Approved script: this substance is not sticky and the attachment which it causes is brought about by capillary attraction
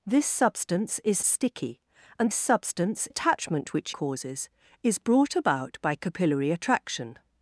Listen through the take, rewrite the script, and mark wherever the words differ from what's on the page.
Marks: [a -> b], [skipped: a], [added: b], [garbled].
this substance is [skipped: not] sticky and [the -> substance] attachment which [skipped: it] causes is brought about by capillary attraction